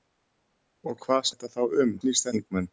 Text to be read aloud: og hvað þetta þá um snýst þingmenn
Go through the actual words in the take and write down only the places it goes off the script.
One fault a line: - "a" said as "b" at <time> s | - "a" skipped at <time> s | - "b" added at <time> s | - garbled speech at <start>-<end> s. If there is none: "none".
none